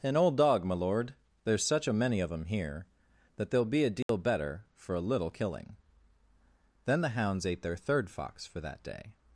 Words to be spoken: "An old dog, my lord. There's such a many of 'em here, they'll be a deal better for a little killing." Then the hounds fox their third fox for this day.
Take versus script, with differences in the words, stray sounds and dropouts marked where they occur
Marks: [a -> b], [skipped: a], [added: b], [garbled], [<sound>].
"An old dog, my lord. There's such a many of 'em here, [added: that] they'll be a deal [dropout] better for a little killing." Then the hounds [fox -> ate] their third fox for [this -> that] day.